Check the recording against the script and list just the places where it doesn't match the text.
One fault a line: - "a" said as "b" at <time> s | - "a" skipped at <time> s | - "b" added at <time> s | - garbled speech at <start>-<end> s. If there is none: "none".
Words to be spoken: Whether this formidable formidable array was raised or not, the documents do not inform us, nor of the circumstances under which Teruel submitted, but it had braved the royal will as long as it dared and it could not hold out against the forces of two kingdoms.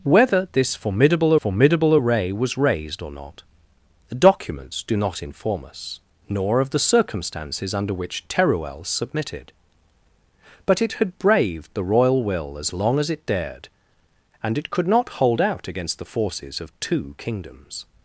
none